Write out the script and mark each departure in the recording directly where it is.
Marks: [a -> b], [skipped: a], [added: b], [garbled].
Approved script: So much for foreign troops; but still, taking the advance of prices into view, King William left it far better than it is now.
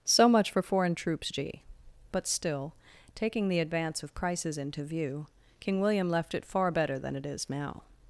So much for foreign troops; [added: g] but still, taking the advance of [prices -> crisis] into view, King William left it far better than it is now.